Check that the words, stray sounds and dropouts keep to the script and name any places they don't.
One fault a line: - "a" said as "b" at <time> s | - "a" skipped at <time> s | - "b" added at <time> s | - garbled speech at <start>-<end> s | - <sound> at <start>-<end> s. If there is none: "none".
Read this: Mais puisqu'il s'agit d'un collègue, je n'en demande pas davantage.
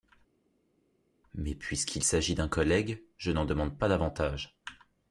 none